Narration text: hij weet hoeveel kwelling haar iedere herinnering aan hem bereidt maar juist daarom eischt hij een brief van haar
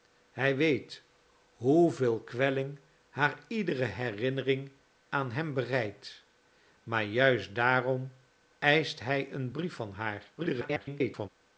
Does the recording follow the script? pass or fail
fail